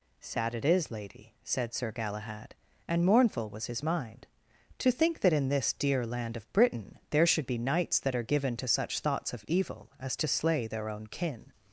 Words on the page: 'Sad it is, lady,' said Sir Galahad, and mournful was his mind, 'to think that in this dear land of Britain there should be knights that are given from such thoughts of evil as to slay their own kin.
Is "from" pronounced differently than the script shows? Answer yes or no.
yes